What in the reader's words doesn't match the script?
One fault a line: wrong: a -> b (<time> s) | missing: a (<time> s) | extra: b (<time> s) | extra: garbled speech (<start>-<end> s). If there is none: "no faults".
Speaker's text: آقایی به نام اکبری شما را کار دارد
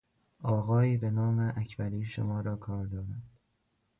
no faults